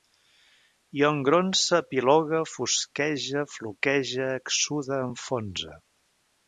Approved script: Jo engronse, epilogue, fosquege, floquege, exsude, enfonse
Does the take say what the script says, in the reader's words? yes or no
yes